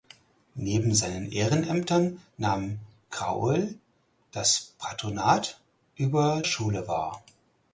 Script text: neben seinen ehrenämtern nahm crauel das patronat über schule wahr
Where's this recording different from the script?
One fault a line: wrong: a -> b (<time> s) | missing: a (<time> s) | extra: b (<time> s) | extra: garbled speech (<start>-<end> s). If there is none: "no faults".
no faults